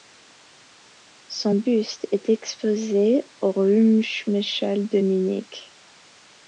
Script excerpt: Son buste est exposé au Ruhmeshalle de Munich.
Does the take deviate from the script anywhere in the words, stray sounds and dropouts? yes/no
no